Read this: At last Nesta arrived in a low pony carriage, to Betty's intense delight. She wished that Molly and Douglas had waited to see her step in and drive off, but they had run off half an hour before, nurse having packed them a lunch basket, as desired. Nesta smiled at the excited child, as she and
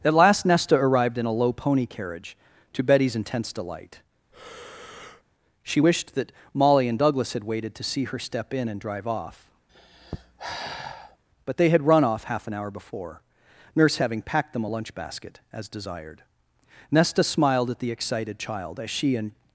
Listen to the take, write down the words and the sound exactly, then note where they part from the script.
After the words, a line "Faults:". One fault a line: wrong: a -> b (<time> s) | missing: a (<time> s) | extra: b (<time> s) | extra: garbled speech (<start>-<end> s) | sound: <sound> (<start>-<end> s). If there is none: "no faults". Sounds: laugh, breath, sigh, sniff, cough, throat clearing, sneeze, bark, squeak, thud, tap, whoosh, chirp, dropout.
At last Nesta arrived in a low pony carriage, to Betty's intense delight. She wished that Molly and Douglas had waited to see her step in and drive off, but they had run off half an hour before, nurse having packed them a lunch basket, as desired. Nesta smiled at the excited child, as she and
Faults:
sound: breath (4.3-5.2 s)
sound: sigh (9.7-11.2 s)